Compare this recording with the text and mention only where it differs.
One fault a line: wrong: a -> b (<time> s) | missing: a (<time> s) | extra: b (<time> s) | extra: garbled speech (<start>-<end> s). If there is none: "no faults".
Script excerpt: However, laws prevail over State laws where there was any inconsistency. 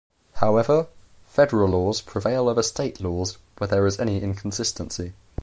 extra: federal (1.3 s)
wrong: was -> is (3.8 s)